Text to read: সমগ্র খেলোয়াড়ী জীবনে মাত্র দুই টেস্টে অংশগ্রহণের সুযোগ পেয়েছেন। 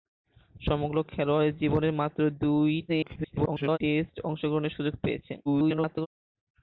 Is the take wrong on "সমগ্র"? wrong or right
right